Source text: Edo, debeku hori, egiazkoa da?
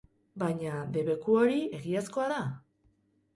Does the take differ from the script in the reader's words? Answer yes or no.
yes